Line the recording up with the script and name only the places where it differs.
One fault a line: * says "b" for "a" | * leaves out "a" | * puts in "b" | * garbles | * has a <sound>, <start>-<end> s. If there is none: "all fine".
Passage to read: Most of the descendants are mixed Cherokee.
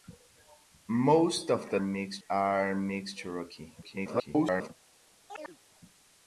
* says "mixed" for "descendants"
* garbles
* has a chirp, 5.3-5.6 s